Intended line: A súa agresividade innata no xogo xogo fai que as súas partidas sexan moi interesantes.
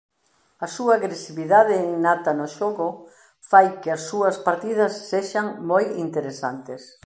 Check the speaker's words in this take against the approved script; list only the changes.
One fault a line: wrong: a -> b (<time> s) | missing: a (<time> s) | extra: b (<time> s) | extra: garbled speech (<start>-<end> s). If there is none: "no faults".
missing: xogo (2.9 s)